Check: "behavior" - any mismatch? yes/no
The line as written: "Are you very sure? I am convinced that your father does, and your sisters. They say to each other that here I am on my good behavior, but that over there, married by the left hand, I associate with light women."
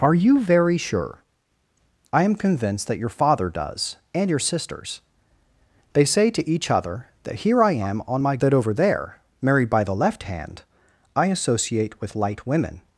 yes